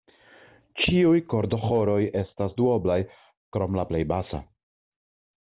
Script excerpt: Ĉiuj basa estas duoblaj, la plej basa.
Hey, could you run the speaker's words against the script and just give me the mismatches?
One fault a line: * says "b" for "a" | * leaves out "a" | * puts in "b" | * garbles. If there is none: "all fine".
* says "kordoĥoroj" for "basa"
* puts in "krom"